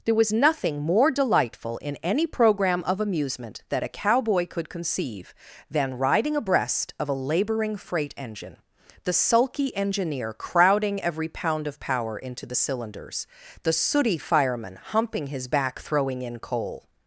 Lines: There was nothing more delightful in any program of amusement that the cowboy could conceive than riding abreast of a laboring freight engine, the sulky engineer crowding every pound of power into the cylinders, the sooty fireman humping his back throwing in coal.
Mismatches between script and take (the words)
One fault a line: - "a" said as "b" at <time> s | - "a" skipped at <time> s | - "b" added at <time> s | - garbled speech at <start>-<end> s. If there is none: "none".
- "the" said as "a" at 3.8 s